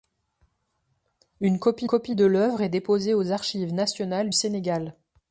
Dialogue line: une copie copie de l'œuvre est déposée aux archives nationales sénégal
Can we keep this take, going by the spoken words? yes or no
yes